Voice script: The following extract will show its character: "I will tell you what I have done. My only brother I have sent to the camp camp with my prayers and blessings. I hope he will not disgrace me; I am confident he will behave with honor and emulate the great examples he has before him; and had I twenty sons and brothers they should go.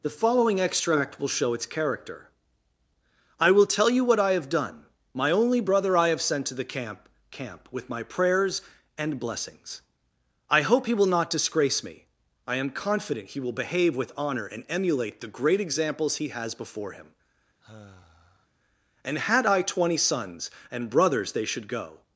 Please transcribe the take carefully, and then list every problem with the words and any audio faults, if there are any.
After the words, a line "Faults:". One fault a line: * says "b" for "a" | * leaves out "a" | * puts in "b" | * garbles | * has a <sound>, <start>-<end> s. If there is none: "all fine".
The following extract will show its character: "I will tell you what I have done. My only brother I have sent to the camp camp with my prayers and blessings. I hope he will not disgrace me; I am confident he will behave with honor and emulate the great examples he has before him; and had I twenty sons and brothers they should go.
Faults:
* has a sigh, 17.6-18.5 s